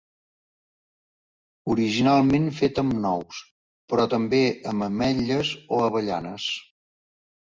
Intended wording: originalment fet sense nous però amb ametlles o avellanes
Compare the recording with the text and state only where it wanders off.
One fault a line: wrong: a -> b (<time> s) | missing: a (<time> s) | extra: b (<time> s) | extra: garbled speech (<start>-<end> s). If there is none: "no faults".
wrong: sense -> amb (2.8 s)
extra: també (4.1 s)